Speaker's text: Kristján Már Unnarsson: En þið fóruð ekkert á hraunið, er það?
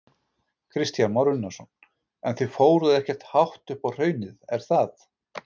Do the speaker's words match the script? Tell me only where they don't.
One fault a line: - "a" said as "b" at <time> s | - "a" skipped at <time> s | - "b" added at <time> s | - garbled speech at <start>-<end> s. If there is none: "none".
- "hátt upp" added at 3.4 s